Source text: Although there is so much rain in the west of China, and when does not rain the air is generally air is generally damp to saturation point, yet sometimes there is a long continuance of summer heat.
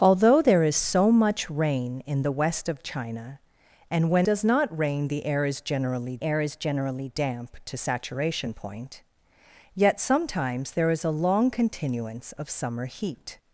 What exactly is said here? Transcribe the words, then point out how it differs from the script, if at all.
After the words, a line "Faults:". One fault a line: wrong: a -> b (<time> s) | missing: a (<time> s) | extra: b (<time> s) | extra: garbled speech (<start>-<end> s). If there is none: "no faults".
Although there is so much rain in the west of China, and when does not rain the air is generally air is generally damp to saturation point, yet sometimes there is a long continuance of summer heat.
Faults:
no faults